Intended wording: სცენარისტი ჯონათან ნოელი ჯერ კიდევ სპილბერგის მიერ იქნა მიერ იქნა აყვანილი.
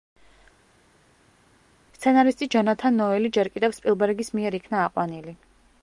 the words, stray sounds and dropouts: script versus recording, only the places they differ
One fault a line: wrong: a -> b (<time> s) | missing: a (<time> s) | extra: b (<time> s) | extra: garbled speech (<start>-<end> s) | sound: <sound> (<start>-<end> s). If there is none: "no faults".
missing: მიერ იქნა (4.9 s)